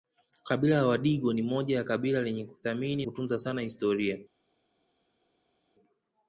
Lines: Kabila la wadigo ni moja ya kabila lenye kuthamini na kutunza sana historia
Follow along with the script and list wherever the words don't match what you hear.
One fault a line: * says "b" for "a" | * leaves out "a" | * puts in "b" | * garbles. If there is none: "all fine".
* leaves out "na"